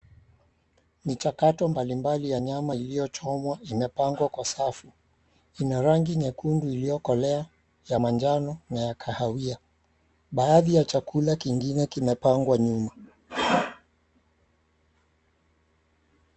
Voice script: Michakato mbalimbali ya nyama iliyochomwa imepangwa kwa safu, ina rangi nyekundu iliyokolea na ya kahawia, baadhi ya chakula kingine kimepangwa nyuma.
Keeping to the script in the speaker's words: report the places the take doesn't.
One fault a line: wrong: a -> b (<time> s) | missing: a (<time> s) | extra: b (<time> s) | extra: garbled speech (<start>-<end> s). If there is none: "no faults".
extra: ya manjano (7.9 s)